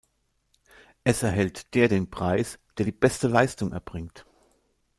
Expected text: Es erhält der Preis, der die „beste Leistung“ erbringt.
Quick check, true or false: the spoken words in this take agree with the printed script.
false